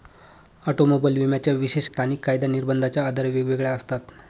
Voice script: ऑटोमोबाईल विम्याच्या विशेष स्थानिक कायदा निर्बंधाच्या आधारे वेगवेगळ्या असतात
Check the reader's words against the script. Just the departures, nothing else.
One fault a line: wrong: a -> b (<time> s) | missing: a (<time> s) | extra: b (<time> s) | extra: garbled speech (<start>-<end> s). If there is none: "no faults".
no faults